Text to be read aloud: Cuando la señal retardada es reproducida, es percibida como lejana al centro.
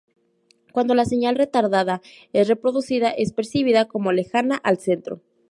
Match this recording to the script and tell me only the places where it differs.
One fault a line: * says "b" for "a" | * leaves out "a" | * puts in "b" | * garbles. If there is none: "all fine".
all fine